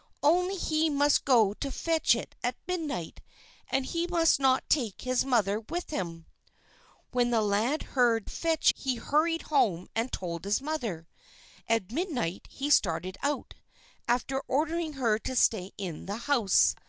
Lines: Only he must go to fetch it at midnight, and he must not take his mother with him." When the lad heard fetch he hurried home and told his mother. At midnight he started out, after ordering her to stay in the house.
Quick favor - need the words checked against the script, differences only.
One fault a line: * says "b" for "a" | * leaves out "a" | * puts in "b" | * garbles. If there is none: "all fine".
all fine